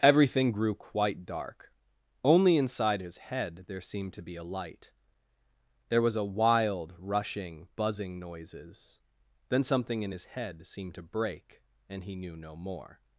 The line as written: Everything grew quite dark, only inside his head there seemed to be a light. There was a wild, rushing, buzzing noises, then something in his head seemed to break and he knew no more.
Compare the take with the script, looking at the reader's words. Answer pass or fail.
pass